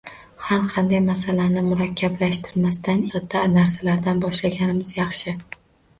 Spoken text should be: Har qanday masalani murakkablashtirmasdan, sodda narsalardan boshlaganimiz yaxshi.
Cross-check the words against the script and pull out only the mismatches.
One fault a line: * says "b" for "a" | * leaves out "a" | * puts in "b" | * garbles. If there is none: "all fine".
all fine